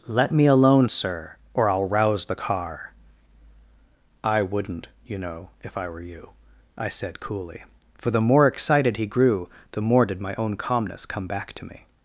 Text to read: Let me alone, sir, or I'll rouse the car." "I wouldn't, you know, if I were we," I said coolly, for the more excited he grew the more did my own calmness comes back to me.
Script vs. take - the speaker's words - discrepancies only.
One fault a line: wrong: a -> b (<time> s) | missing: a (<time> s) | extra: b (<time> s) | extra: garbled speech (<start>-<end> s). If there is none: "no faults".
wrong: we -> you (6.0 s)
wrong: comes -> come (11.1 s)